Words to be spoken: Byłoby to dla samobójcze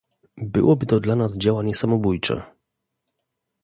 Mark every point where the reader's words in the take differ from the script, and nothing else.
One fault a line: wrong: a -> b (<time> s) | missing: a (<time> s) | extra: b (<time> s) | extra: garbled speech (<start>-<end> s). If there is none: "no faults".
extra: nas działanie (1.1 s)